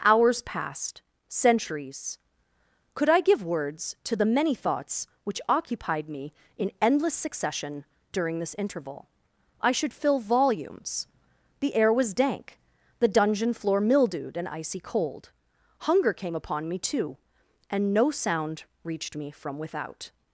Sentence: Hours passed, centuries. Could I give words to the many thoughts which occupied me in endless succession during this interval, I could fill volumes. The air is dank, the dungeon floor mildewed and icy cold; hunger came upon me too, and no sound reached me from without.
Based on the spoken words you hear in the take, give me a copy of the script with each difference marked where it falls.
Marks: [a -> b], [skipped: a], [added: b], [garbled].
Hours passed, centuries. Could I give words to the many thoughts which occupied me in endless succession during this interval, I [could -> should] fill volumes. The air [is -> was] dank, the dungeon floor mildewed and icy cold; hunger came upon me too, and no sound reached me from without.